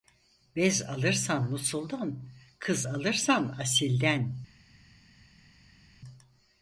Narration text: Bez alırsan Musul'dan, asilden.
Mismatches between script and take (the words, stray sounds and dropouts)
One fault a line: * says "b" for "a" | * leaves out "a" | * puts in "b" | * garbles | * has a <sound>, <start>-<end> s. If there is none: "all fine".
* puts in "kız alırsan"